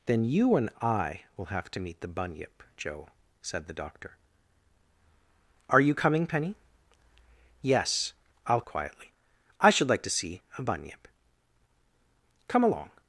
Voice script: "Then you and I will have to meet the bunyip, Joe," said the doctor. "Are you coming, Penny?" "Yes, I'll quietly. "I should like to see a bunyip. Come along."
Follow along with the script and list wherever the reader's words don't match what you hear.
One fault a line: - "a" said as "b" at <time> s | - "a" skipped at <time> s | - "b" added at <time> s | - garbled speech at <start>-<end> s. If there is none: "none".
none